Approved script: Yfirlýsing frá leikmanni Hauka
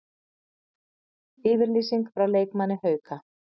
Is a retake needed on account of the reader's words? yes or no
no